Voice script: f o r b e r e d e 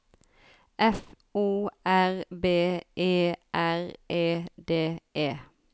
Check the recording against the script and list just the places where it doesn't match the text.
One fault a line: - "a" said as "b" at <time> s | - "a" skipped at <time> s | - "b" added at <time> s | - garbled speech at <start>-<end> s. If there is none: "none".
none